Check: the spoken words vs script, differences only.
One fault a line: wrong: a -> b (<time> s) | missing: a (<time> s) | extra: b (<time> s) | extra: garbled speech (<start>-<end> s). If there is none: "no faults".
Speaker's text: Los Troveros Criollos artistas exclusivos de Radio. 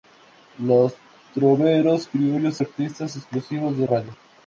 no faults